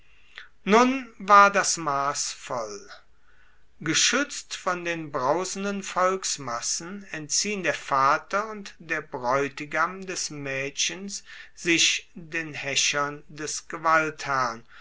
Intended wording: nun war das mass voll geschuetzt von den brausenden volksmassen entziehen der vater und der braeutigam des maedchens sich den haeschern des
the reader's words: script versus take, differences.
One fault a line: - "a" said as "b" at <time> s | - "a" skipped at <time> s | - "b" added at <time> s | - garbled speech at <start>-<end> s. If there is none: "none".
none